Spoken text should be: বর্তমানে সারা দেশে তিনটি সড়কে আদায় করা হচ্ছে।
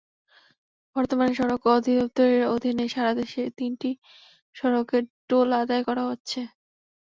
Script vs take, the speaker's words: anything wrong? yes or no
yes